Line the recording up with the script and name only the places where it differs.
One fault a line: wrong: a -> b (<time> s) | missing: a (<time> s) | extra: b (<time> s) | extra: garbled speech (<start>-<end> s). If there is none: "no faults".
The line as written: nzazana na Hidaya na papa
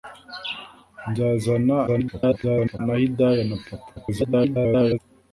extra: garbled speech (1.9-2.8 s)
extra: garbled speech (3.9-5.0 s)